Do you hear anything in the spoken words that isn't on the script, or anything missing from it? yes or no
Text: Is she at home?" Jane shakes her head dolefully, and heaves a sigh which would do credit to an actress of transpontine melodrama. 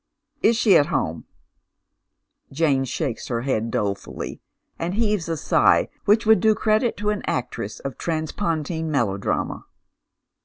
no